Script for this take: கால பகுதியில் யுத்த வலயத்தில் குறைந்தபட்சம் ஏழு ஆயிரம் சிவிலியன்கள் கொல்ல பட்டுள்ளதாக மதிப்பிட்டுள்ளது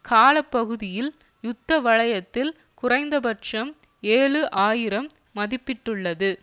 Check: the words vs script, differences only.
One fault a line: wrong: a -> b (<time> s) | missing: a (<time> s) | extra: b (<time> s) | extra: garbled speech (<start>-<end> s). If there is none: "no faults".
missing: சிவிலியன்கள் கொல்ல பட்டுள்ளதாக (5.1 s)